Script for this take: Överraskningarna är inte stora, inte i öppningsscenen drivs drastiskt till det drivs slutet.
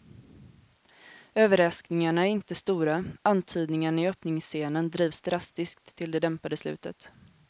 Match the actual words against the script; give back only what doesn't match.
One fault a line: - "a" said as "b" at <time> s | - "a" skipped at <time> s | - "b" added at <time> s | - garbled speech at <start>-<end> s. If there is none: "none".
- "inte" said as "antydningarna" at 3.2 s
- "drivs" said as "dämpade" at 6.2 s